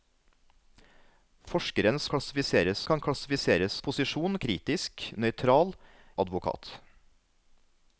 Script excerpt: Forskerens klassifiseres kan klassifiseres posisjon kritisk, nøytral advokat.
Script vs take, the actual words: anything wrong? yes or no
no